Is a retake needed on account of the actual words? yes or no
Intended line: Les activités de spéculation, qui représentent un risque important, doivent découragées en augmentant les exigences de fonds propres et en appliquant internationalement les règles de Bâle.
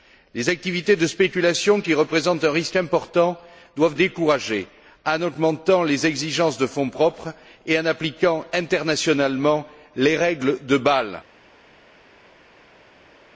no